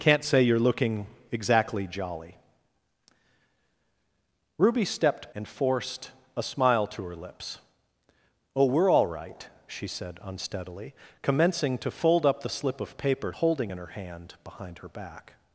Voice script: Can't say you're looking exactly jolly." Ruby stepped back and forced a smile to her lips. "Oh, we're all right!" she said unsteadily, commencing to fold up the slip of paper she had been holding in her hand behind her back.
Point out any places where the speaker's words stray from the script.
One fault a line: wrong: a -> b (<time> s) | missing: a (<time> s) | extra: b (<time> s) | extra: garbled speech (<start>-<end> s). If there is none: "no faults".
missing: back (5.3 s)
missing: she had been (13.3 s)